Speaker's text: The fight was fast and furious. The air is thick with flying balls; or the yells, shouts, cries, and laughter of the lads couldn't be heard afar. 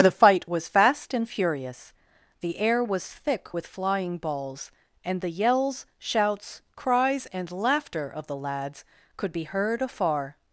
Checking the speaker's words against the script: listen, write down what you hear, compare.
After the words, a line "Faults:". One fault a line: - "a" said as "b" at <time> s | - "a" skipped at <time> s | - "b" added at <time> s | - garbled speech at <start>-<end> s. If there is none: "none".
The fight was fast and furious. The air was thick with flying balls; and the yells, shouts, cries, and laughter of the lads could be heard afar.
Faults:
- "is" said as "was" at 2.8 s
- "or" said as "and" at 5.0 s
- "couldn't" said as "could" at 9.2 s